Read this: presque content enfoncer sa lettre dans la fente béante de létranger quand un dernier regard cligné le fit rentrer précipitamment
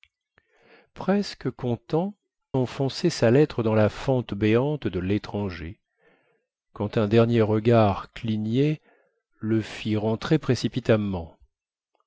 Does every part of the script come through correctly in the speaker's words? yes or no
yes